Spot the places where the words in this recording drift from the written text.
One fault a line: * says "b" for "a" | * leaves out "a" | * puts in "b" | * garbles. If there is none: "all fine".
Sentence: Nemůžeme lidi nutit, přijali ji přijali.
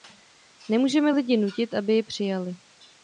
* says "aby" for "přijali"